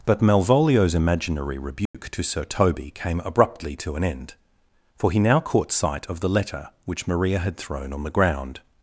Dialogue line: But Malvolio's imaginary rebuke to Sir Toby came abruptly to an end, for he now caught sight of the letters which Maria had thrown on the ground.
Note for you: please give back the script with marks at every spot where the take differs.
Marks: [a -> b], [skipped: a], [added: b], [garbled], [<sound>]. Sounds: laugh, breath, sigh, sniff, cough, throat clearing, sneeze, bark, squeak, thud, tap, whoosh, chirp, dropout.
But Malvolio's imaginary rebuke [dropout] to Sir Toby came abruptly to an end, for he now caught sight of the [letters -> letter] which Maria had thrown on the ground.